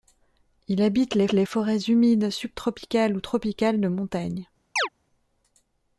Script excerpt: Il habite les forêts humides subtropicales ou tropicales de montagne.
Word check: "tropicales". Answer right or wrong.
right